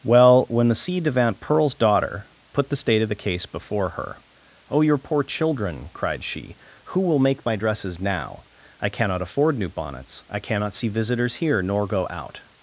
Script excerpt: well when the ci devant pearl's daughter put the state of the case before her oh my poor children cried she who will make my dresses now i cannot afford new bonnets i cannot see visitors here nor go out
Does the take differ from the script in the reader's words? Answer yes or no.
yes